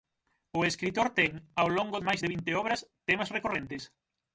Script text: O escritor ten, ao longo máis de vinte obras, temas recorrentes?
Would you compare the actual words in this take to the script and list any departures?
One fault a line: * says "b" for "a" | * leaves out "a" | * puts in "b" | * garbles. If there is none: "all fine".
all fine